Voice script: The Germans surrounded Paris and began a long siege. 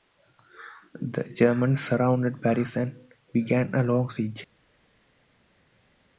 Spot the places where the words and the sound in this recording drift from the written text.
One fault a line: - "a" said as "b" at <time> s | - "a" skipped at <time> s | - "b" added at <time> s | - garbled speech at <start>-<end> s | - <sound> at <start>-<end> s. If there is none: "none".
none